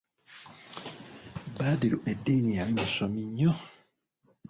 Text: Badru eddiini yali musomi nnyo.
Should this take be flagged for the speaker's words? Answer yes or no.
no